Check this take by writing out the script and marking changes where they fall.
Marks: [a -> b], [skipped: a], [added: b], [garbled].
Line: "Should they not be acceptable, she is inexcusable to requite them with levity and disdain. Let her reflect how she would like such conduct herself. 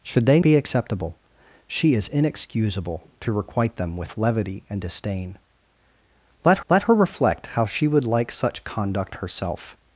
"Should they [skipped: not] be acceptable, she is inexcusable to requite them with levity and disdain. Let [added: let] her reflect how she would like such conduct herself.